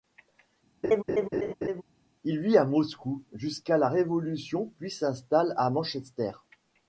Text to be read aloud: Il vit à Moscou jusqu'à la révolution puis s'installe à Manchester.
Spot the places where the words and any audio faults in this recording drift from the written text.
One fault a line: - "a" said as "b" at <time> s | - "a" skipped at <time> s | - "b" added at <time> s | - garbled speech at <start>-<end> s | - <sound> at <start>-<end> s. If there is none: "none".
- laugh at 0.8-1.8 s